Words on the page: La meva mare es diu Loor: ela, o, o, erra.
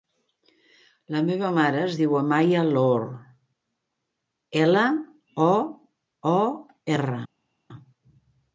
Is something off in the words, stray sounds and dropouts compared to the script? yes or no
yes